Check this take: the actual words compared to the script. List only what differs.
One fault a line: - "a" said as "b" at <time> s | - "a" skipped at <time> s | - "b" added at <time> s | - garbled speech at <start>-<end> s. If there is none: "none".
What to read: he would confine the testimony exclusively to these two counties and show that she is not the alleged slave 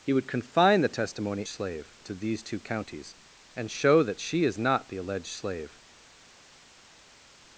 - "exclusively" said as "slave" at 1.5 s